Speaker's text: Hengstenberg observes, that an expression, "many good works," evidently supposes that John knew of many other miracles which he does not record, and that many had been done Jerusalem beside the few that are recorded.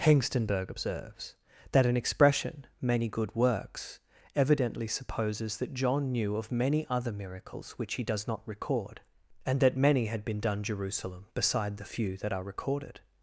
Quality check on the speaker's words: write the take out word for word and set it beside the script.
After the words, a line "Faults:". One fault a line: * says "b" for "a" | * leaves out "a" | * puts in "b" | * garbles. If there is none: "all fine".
Hengstenberg observes, that an expression, "many good works," evidently supposes that John knew of many other miracles which he does not record, and that many had been done Jerusalem beside the few that are recorded.
Faults:
all fine